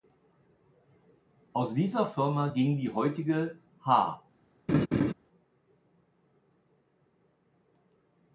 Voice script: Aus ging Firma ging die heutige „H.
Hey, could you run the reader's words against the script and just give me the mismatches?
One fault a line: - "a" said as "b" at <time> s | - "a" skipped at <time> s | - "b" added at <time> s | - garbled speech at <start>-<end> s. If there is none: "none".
- "ging" said as "dieser" at 1.8 s